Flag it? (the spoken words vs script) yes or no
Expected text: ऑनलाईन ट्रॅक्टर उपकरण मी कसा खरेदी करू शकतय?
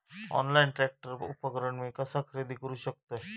no